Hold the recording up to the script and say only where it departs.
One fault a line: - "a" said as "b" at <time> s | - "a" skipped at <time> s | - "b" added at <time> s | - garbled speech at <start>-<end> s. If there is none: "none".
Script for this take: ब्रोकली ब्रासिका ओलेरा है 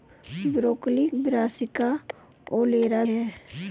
none